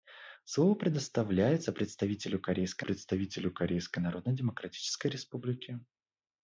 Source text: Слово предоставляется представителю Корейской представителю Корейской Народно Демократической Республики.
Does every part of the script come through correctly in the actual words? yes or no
yes